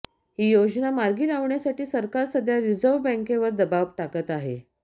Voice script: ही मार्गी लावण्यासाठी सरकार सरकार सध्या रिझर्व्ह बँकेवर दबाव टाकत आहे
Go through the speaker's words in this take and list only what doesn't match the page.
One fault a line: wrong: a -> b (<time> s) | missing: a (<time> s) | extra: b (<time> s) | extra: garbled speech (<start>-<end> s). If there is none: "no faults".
extra: योजना (0.5 s)
missing: सरकार (2.2 s)